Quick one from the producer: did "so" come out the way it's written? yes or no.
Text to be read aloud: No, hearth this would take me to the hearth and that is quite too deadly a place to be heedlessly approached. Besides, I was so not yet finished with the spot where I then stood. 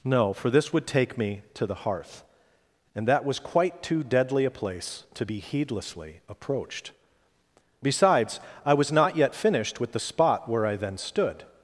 no